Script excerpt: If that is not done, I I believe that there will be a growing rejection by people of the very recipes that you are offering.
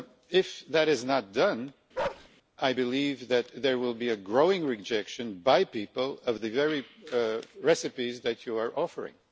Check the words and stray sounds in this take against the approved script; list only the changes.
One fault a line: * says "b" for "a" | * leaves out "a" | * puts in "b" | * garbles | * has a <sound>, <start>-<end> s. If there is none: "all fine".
* has a bark, 1.9-2.3 s
* leaves out "I"